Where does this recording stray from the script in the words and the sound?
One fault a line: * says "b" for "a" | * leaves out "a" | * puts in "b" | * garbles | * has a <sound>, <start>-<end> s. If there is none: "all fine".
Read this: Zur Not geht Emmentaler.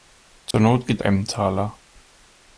* has a dropout, 0.5-0.5 s